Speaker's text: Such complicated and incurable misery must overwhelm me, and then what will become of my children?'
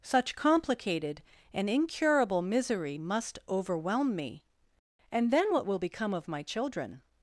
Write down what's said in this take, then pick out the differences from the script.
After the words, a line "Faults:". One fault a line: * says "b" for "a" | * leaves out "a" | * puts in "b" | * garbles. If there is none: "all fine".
Such complicated and incurable misery must overwhelm me, and then what will become of my children?'
Faults:
all fine